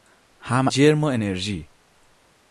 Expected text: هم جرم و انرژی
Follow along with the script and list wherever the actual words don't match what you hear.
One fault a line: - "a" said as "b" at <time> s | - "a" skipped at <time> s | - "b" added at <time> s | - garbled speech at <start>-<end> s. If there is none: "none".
none